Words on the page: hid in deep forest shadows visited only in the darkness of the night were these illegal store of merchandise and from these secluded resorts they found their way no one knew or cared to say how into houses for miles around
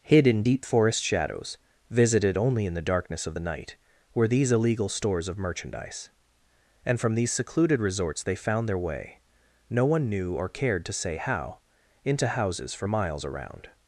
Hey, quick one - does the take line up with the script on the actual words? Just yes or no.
no